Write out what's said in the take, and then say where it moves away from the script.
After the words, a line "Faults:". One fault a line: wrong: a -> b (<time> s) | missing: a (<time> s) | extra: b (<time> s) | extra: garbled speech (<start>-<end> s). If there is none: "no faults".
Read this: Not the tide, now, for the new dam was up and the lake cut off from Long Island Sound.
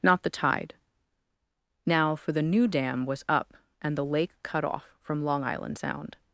Not the tide, now, for the new dam was up and the lake cut off from Long Island Sound.
Faults:
no faults